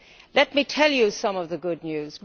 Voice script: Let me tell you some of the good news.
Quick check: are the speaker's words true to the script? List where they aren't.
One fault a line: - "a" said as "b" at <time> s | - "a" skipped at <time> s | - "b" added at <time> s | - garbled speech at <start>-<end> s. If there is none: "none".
none